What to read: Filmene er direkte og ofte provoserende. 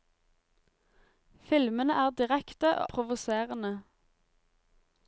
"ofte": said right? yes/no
no